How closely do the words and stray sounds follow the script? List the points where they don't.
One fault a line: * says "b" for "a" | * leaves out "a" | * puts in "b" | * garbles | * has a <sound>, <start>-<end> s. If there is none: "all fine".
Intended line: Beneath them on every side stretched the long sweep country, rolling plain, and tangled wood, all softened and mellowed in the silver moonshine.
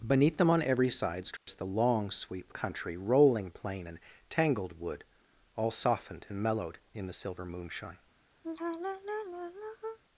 * has a dropout, 1.4-1.5 s
* has a sigh, 8.4-10.0 s